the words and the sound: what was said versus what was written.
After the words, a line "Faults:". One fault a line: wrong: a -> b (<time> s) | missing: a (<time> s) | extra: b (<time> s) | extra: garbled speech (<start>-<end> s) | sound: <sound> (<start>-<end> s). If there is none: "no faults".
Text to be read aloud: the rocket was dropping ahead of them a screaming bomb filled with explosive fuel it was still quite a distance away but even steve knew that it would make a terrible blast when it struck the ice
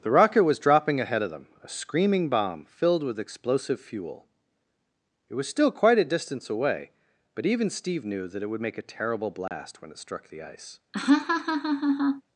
the rocket was dropping ahead of them a screaming bomb filled with explosive fuel it was still quite a distance away but even steve knew that it would make a terrible blast when it struck the ice
Faults:
sound: dropout (9.5-9.5 s)
sound: laugh (10.9-12.2 s)